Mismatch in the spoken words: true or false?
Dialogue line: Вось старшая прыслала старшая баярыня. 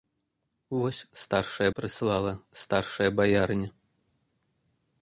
false